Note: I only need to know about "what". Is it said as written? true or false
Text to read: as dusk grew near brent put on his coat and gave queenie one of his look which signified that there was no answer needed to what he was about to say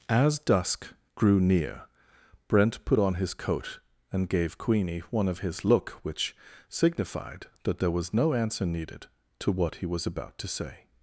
true